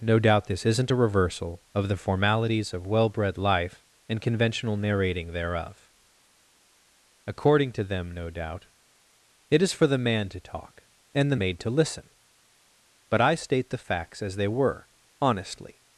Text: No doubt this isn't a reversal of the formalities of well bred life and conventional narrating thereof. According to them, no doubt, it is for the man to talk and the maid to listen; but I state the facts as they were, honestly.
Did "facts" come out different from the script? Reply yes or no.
no